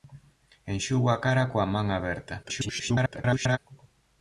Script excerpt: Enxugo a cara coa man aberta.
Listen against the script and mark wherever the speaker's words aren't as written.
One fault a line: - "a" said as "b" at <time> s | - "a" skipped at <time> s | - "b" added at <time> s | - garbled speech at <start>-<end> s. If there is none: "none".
- garbled speech at 2.4-3.6 s